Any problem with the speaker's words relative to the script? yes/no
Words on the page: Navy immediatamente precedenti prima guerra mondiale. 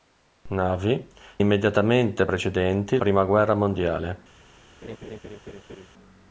no